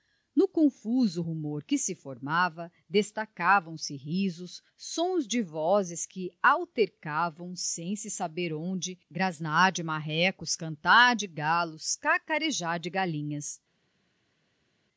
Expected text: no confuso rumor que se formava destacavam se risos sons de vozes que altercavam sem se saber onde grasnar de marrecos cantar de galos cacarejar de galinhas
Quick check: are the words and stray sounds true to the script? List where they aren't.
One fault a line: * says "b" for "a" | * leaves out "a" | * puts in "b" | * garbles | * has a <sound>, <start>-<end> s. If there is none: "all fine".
all fine